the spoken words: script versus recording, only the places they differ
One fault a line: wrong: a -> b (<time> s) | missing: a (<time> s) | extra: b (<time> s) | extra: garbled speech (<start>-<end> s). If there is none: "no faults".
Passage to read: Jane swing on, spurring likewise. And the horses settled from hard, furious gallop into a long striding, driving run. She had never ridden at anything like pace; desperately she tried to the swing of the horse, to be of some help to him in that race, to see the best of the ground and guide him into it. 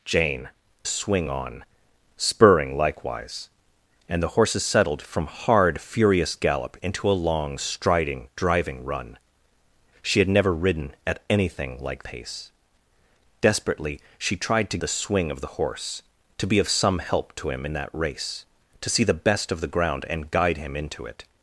no faults